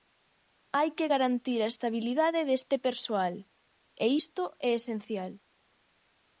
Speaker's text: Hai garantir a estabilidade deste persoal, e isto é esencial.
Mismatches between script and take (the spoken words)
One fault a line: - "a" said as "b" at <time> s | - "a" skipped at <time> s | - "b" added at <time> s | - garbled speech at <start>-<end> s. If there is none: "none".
- "que" added at 1.0 s